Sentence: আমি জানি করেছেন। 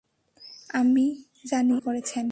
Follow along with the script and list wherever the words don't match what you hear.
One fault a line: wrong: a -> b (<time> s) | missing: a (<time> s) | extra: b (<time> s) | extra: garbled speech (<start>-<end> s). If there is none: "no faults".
no faults